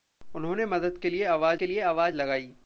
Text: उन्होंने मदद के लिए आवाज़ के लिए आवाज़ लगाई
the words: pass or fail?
pass